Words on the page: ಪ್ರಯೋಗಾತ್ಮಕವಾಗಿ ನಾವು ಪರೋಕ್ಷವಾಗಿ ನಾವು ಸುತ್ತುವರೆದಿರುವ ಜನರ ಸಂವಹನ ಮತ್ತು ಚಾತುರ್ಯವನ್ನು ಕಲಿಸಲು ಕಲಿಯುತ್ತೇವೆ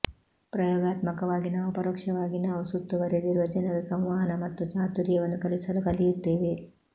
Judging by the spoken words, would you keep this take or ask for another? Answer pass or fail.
pass